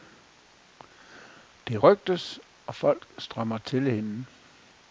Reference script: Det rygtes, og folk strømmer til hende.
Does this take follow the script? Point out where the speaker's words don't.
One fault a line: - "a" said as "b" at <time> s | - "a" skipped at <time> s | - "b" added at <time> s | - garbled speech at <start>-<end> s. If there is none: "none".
none